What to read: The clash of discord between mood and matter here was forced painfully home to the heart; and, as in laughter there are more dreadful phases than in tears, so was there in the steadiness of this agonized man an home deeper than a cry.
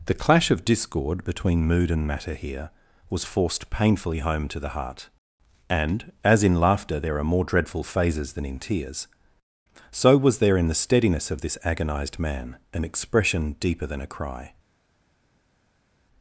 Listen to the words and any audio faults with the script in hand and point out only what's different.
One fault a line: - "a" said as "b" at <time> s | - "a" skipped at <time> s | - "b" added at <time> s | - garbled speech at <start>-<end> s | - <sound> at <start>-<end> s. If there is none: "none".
- "home" said as "expression" at 12.9 s